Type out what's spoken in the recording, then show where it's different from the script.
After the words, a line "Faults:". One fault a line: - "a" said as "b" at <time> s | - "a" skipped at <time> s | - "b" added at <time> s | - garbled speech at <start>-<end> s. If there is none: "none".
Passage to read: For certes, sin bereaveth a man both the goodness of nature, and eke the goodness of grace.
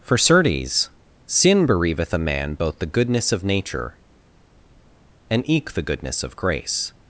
For certes, sin bereaveth a man both the goodness of nature, and eke the goodness of grace.
Faults:
none